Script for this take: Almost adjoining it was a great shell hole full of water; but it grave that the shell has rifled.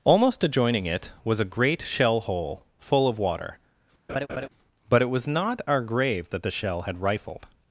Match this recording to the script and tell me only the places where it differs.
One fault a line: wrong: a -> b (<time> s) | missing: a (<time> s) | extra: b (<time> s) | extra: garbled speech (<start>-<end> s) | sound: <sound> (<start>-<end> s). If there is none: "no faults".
sound: laugh (4.1-4.5 s)
extra: was not our (5.1 s)
wrong: has -> had (6.9 s)